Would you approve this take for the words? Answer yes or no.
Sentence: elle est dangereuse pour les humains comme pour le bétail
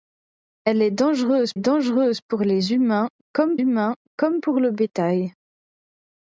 no